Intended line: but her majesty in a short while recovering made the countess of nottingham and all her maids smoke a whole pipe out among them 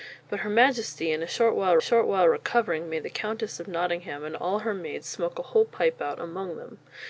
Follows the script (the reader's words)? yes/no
no